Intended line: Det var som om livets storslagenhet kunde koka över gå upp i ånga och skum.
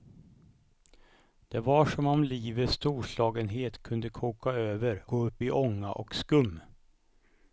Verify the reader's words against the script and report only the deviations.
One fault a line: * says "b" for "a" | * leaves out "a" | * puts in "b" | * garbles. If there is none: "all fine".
all fine